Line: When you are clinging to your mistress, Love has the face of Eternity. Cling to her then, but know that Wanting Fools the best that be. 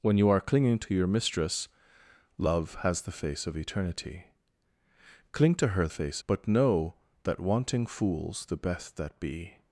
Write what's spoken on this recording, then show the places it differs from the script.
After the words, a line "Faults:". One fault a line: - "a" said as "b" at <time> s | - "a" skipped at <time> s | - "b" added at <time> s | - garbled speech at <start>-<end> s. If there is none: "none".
When you are clinging to your mistress, Love has the face of Eternity. Cling to her face, but know that Wanting Fools the best that be.
Faults:
- "then" said as "face" at 5.9 s